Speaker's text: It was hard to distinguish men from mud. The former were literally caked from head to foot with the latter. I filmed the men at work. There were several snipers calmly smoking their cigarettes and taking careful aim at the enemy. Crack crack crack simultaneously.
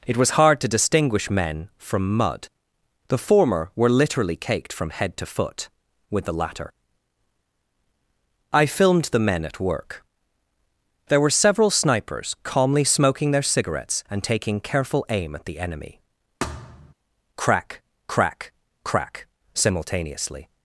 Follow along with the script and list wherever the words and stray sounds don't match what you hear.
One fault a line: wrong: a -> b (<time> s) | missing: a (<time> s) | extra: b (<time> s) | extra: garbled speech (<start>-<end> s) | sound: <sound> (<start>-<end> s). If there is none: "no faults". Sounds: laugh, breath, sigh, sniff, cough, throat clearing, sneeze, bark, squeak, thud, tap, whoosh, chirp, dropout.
sound: thud (16.4-16.9 s)